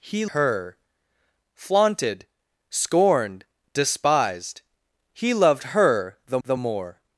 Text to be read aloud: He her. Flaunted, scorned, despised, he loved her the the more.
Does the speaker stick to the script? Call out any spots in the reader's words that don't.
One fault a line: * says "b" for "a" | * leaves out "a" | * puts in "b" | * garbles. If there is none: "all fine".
all fine